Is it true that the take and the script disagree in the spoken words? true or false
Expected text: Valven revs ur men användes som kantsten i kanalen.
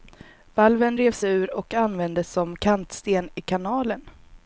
true